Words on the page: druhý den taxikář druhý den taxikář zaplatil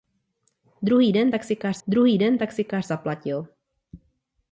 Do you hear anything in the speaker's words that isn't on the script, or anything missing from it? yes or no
no